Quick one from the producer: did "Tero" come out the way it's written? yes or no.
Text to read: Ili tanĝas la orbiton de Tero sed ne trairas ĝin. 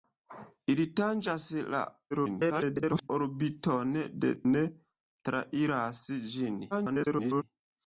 no